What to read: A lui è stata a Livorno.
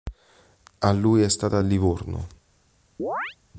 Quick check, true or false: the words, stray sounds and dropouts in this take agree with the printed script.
false